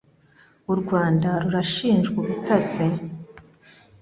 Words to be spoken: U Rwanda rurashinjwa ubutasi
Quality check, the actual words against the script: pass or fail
pass